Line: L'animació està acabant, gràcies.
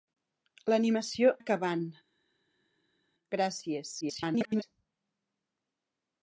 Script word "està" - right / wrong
wrong